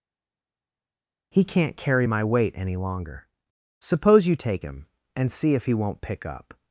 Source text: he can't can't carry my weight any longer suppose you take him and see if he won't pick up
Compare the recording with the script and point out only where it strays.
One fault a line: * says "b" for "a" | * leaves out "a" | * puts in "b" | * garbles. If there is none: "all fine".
* leaves out "can't"